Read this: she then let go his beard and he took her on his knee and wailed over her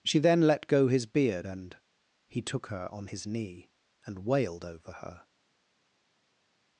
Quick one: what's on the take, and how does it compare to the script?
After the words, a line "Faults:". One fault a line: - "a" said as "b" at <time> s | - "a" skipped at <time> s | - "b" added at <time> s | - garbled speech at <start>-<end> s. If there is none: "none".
she then let go his beard and he took her on his knee and wailed over her
Faults:
none